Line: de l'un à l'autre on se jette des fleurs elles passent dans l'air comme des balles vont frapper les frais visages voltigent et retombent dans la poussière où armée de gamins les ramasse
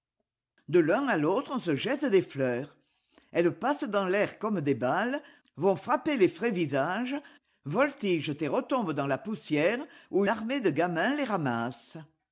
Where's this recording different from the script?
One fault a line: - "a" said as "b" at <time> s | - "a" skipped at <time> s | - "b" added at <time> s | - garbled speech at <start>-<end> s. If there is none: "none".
none